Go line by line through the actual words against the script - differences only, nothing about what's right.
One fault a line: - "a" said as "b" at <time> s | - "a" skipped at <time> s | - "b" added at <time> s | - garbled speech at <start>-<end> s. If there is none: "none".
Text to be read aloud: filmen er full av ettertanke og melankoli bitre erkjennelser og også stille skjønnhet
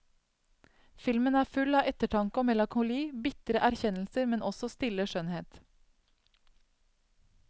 - "og" said as "men" at 4.3 s